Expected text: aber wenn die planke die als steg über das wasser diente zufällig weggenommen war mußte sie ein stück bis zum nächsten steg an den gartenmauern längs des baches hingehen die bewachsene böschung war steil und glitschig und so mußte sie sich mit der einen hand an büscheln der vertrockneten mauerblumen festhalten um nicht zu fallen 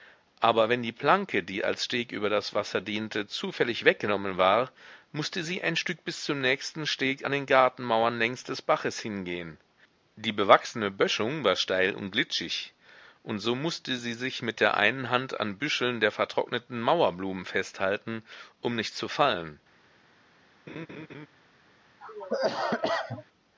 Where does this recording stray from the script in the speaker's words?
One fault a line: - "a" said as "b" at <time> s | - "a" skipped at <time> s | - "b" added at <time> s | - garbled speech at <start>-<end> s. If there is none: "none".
none